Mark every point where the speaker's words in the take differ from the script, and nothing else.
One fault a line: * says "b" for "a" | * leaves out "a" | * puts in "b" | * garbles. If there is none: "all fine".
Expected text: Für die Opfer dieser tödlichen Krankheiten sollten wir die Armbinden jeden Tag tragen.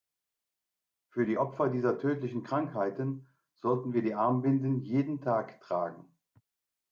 all fine